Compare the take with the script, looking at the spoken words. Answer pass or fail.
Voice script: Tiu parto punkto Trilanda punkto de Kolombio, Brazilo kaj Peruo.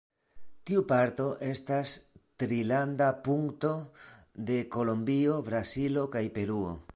fail